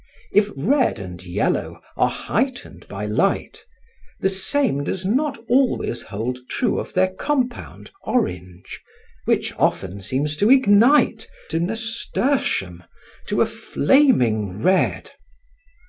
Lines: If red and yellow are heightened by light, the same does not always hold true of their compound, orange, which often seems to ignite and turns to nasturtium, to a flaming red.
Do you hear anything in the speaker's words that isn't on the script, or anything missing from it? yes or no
yes